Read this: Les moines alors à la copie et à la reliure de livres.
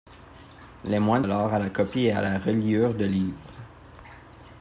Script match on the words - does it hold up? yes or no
yes